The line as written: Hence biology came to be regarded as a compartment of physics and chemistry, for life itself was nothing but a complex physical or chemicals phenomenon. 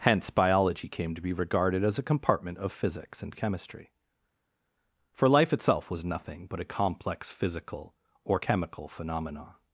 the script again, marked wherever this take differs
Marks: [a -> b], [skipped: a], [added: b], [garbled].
Hence biology came to be regarded as a compartment of physics and chemistry, for life itself was nothing but a complex physical or [chemicals -> chemical] phenomenon.